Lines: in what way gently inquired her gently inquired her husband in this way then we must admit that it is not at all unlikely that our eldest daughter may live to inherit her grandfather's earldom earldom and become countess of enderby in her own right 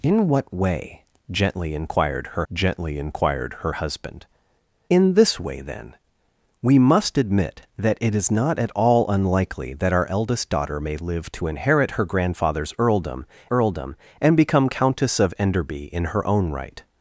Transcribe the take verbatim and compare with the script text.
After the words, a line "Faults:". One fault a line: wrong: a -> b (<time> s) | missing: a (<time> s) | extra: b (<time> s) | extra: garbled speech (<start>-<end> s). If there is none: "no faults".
in what way gently inquired her gently inquired her husband in this way then we must admit that it is not at all unlikely that our eldest daughter may live to inherit her grandfather's earldom earldom and become countess of enderby in her own right
Faults:
no faults